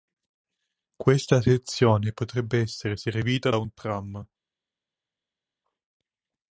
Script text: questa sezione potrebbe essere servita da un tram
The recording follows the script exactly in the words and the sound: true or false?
true